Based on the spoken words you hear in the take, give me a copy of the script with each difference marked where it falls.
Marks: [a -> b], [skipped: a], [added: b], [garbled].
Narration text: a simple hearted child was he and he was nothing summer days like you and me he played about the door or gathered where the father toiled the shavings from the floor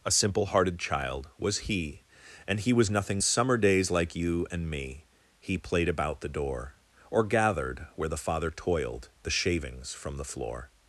a simple hearted child was he and he was nothing summer days like you and me he played about the door or gathered where the father toiled the shavings from the floor